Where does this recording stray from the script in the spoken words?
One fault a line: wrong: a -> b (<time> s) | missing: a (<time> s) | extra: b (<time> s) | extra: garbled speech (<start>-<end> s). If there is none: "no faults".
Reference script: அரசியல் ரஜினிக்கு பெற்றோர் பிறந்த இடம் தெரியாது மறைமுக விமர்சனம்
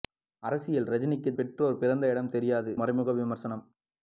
no faults